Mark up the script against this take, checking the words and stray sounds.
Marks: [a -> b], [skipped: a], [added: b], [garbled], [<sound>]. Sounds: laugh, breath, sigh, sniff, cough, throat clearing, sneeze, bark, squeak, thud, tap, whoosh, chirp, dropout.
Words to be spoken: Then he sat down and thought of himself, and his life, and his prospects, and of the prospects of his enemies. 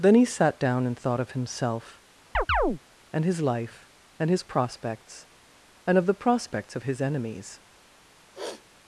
Then he sat down and thought of himself, [chirp] and his life, and his prospects, and of the prospects of his enemies. [sniff]